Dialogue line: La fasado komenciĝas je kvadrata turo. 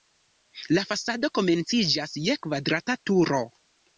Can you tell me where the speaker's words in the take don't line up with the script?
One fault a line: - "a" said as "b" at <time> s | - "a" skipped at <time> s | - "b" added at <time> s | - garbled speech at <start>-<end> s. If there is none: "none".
none